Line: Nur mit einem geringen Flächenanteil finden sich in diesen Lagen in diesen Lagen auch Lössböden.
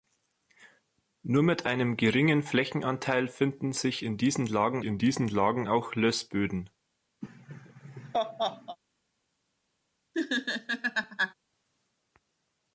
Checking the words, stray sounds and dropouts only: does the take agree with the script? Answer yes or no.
no